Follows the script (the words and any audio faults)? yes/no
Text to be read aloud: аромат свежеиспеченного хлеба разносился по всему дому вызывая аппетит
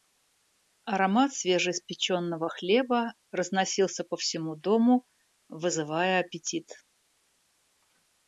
yes